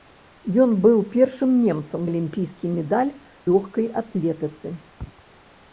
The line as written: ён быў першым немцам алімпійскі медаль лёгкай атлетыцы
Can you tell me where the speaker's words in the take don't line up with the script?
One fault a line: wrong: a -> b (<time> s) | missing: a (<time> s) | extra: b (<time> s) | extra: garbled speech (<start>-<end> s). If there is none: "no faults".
no faults